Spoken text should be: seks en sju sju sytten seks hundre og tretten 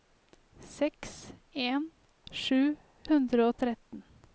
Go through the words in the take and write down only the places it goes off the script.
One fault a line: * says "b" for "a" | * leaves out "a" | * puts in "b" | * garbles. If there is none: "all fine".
* leaves out "sju sytten seks"